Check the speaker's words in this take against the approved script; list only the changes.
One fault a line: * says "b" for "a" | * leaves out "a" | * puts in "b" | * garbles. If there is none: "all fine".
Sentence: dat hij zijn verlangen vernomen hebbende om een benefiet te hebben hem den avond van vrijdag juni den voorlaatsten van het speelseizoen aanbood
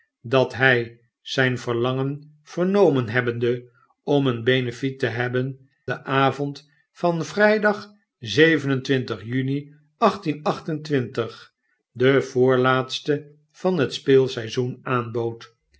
* leaves out "hem"